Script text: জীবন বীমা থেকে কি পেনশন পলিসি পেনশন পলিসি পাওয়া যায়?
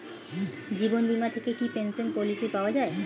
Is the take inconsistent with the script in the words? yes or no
yes